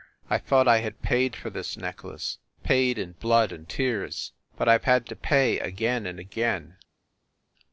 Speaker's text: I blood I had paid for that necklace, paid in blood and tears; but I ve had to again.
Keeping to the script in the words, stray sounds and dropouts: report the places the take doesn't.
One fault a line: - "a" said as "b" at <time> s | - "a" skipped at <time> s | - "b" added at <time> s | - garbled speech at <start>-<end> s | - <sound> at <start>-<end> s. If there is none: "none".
- "blood" said as "thought" at 0.4 s
- "that" said as "this" at 1.5 s
- "pay again and" added at 5.2 s